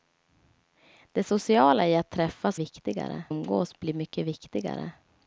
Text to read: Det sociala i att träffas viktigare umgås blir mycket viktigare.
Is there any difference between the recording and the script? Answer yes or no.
no